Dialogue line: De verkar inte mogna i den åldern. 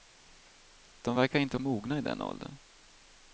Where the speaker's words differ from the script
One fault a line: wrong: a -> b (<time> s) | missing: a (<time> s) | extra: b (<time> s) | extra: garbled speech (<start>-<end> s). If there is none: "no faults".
no faults